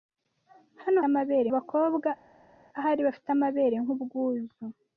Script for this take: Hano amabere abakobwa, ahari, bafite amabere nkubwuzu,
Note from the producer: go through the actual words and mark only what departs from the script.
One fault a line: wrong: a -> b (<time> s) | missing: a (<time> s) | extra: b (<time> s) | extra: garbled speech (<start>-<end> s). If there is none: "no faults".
no faults